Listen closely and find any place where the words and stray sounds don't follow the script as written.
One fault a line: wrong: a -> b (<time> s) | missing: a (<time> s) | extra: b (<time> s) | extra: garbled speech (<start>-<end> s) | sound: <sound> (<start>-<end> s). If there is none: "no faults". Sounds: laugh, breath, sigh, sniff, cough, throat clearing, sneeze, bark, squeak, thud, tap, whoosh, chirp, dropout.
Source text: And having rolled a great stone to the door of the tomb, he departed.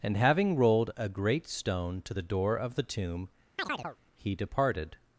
sound: chirp (3.6-4.0 s)